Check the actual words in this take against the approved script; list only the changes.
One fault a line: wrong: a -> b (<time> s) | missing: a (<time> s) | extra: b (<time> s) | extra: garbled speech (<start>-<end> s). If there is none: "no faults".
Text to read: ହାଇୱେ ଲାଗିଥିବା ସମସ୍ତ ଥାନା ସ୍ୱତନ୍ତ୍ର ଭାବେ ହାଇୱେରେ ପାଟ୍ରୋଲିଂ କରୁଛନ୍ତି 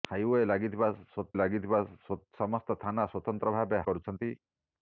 extra: ଲାଗିଥିବା (1.3 s)
missing: ହାଇୱେରେ ପାଟ୍ରୋଲିଂ (3.8 s)